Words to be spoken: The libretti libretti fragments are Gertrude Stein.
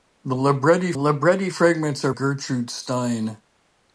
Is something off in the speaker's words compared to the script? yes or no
no